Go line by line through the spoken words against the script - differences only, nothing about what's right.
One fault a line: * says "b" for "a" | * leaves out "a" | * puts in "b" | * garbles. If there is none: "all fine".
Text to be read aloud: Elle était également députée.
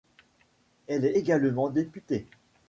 * says "est" for "était"